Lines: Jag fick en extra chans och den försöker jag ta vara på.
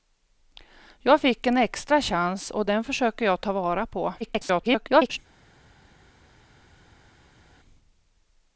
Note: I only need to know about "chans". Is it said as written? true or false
true